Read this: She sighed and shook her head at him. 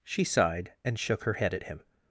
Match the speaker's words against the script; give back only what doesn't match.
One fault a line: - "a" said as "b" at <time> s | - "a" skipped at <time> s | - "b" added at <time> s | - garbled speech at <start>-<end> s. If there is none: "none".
none